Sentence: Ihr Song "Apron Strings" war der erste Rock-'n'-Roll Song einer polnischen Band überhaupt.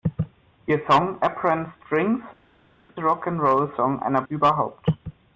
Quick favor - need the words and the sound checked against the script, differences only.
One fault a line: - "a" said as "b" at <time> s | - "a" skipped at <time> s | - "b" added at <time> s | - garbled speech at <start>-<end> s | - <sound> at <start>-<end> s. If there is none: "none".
- "war der erste" skipped at 2.2 s
- "polnischen Band" skipped at 4.2 s